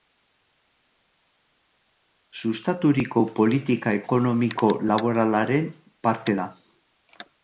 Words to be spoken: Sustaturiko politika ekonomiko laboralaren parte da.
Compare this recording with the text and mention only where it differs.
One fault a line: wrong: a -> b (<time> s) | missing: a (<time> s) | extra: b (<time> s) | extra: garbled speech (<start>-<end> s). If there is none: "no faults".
no faults